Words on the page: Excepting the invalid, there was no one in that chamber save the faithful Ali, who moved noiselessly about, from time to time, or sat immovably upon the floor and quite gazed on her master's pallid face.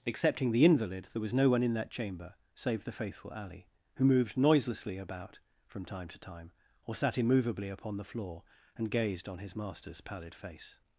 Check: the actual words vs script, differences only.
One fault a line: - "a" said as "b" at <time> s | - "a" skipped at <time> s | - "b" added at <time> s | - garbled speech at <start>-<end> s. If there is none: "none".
- "quite" skipped at 8.9 s
- "her" said as "his" at 9.4 s